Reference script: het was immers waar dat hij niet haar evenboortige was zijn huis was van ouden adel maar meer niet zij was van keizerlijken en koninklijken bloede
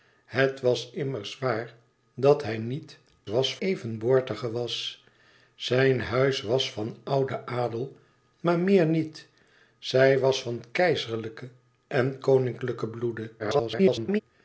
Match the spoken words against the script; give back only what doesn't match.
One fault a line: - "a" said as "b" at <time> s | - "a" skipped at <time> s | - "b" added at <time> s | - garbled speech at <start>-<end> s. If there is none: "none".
- "haar" said as "was" at 3.3 s
- garbled speech at 13.4-14.2 s